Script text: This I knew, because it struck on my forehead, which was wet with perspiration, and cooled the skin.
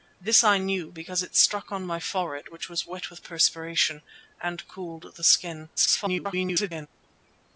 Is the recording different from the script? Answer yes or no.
yes